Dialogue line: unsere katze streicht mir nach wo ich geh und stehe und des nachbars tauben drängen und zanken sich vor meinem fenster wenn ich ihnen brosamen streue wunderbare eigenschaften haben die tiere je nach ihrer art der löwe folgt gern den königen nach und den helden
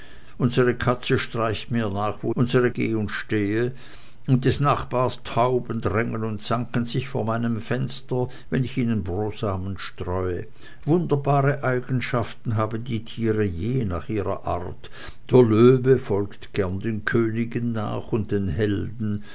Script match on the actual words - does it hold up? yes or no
no